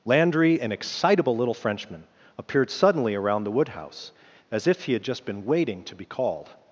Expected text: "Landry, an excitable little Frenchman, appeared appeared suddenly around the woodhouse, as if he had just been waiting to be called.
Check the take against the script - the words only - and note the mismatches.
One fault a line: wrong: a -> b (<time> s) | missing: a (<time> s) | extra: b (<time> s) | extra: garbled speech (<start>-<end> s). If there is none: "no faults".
missing: appeared (2.7 s)